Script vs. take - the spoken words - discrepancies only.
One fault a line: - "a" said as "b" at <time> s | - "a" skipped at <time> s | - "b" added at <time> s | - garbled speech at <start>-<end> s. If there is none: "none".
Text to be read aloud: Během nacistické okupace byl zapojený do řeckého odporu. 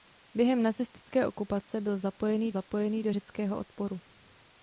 - "zapojený" added at 2.5 s